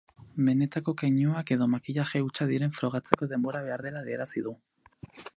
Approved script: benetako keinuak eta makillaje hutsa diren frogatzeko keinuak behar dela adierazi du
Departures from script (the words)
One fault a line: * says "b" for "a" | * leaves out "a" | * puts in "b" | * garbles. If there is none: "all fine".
* says "edo" for "eta"
* says "denbora" for "keinuak"